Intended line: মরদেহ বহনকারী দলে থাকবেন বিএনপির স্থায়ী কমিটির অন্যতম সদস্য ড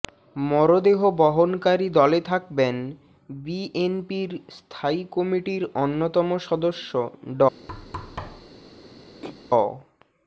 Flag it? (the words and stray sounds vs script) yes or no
yes